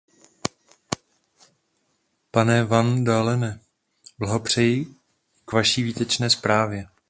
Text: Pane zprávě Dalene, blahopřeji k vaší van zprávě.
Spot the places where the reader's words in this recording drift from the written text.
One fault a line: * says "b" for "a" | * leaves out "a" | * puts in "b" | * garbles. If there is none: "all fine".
* says "van" for "zprávě"
* says "výtečné" for "van"